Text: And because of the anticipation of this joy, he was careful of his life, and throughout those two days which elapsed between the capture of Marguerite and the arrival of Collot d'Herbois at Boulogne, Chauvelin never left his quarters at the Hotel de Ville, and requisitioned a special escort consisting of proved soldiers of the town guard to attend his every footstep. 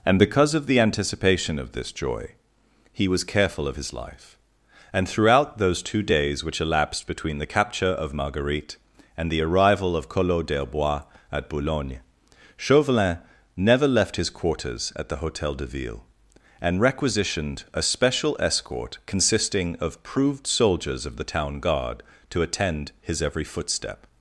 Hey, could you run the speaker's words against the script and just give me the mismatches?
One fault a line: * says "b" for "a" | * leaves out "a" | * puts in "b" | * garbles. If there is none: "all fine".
all fine